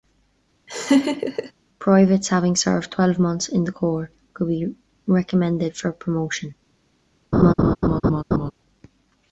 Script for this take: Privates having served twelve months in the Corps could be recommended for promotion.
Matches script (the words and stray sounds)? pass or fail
fail